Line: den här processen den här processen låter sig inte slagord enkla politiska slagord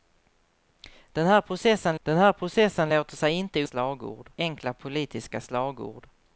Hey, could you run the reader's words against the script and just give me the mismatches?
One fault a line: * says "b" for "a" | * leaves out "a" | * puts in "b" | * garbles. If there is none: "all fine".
all fine